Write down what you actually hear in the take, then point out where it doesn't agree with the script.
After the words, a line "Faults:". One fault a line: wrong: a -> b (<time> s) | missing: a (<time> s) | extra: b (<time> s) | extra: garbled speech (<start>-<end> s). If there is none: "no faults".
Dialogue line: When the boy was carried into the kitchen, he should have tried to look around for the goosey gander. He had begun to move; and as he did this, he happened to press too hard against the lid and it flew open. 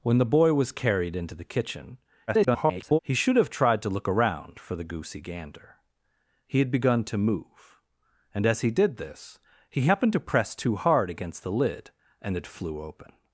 When the boy was carried into the kitchen, [garbled] he should have tried to look around for the goosey gander. He had begun to move; and as he did this, he happened to press too hard against the lid and it flew open.
Faults:
extra: garbled speech (2.3-3.0 s)